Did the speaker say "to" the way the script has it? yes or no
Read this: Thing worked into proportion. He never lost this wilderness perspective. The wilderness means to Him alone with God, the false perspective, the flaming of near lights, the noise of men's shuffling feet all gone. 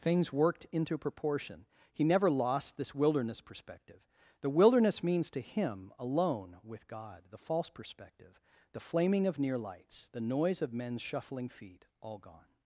yes